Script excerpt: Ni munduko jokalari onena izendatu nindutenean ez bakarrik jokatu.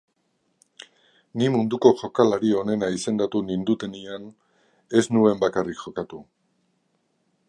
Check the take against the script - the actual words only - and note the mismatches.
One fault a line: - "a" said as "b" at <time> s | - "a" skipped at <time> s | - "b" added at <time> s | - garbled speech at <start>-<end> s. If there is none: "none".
- "nuen" added at 5.2 s